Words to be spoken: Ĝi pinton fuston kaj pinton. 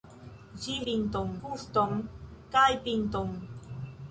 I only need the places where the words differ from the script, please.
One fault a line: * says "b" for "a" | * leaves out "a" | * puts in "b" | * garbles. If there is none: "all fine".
all fine